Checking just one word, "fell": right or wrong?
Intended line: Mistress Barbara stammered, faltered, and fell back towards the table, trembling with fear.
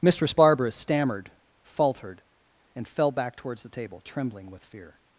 right